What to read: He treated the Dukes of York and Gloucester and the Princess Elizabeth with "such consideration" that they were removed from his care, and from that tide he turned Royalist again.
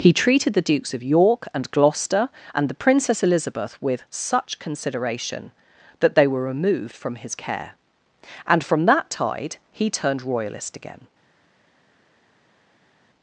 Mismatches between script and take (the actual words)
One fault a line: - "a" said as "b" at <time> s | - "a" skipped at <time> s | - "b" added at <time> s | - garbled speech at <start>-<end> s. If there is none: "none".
none